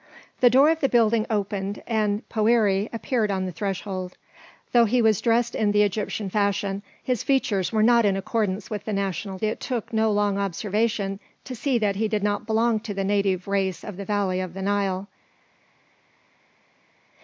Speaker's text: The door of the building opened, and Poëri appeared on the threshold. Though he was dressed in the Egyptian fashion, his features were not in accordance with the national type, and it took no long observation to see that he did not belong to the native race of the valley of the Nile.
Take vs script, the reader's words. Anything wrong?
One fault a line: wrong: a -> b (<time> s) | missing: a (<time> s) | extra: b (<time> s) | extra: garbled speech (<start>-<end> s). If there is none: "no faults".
missing: type and (9.4 s)